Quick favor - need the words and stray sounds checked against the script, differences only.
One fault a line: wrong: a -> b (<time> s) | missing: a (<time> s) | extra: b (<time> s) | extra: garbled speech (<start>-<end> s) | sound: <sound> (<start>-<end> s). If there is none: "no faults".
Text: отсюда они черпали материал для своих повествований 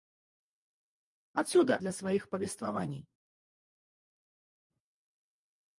missing: они черпали материал (1.8 s)